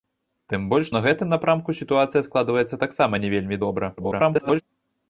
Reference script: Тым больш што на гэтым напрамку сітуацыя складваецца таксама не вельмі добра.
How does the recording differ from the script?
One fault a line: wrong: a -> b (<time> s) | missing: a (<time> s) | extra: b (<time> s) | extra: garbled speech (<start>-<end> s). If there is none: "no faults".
missing: што (0.9 s)
extra: garbled speech (4.0-4.6 s)